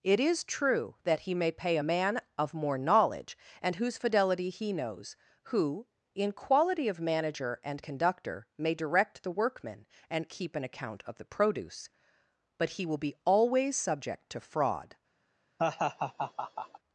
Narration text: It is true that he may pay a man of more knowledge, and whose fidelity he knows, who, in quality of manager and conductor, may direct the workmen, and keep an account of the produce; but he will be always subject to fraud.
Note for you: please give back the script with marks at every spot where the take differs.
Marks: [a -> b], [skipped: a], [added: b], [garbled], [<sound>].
It is true that he may pay a man of more knowledge, and whose fidelity he knows, who, in quality of manager and conductor, may direct the workmen, and keep an account of the produce; but he will be always subject to fraud. [laugh]